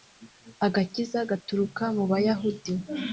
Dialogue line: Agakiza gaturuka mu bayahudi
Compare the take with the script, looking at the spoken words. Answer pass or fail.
pass